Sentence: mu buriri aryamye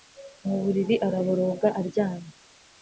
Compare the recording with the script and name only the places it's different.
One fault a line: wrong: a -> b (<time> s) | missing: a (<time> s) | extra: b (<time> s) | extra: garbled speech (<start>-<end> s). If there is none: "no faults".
extra: araboroga (1.1 s)